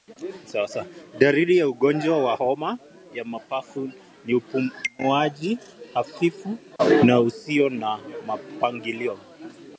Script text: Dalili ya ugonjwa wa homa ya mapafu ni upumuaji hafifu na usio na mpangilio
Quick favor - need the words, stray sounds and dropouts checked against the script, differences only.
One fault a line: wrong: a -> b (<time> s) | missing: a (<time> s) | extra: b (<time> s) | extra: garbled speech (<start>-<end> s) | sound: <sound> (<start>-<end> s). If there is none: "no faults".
no faults